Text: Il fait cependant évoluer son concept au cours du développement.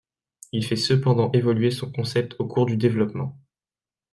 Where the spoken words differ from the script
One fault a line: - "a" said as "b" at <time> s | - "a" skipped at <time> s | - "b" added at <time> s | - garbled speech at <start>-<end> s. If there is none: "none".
none